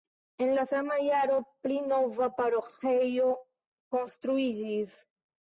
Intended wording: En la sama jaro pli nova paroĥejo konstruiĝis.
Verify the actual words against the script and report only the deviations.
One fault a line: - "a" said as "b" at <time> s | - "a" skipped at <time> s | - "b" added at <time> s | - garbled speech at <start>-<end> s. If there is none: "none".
none